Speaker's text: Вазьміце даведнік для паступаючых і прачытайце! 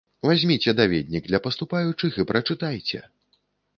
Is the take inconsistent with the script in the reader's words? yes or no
no